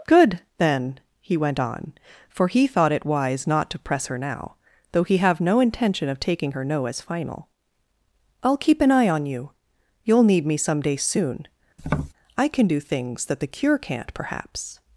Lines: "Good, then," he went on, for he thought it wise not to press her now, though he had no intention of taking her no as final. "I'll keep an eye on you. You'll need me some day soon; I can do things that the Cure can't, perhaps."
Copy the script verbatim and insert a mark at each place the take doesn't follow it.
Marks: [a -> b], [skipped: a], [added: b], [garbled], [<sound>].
"Good, then," he went on, for he thought it wise not to press her now, though he [had -> have] no intention of taking her no as final. "I'll keep an eye on you. You'll need me some day soon; [tap] I can do things that the Cure can't, perhaps."